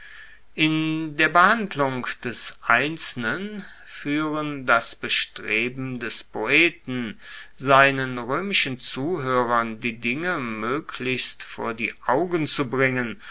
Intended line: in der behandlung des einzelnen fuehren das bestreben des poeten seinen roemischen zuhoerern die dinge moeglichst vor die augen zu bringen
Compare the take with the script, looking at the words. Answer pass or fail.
pass